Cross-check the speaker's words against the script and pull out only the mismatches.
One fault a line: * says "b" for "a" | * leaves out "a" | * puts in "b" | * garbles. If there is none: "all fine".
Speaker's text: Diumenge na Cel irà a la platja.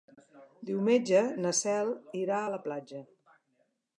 all fine